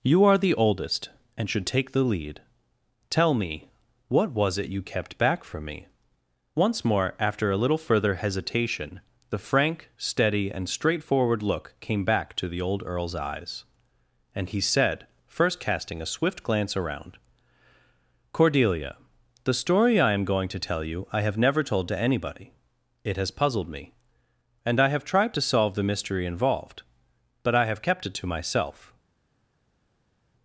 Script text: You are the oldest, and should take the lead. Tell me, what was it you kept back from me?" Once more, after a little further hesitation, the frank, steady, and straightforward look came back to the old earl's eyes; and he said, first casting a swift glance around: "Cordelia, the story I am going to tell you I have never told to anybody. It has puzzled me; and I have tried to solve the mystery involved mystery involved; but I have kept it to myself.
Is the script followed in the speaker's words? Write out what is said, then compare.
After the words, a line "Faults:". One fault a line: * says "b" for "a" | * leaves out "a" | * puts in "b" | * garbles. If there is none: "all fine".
You are the oldest, and should take the lead. Tell me, what was it you kept back from me?" Once more, after a little further hesitation, the frank, steady, and straightforward look came back to the old earl's eyes; and he said, first casting a swift glance around: "Cordelia, the story I am going to tell you I have never told to anybody. It has puzzled me; and I have tried to solve the mystery involved; but I have kept it to myself.
Faults:
* leaves out "mystery involved"